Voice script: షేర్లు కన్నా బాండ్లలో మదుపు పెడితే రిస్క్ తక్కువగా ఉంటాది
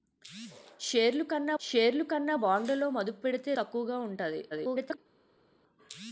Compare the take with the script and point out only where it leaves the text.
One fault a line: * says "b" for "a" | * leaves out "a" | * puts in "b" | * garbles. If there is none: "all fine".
* puts in "షేర్లు కన్నా"
* leaves out "రిస్క్"
* garbles